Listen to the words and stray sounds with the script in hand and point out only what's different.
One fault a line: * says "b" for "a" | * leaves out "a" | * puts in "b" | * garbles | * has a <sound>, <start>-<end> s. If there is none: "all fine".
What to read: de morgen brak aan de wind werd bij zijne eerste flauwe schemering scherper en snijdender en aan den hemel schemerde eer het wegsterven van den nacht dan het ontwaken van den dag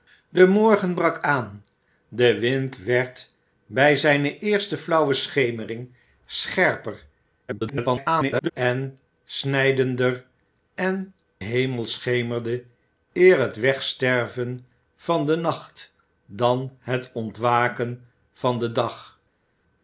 * garbles
* leaves out "aan den"